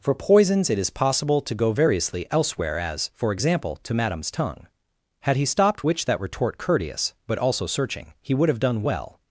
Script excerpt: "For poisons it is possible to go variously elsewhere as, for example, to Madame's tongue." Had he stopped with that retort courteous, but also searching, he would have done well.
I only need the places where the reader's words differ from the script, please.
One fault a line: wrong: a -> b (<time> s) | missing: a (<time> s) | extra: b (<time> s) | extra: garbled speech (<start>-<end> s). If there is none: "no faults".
wrong: with -> which (5.8 s)